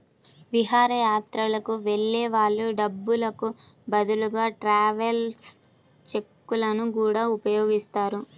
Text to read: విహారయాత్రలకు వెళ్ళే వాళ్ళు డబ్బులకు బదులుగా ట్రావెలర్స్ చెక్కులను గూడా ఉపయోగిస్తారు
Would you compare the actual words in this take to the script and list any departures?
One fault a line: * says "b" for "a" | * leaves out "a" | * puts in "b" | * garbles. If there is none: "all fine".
all fine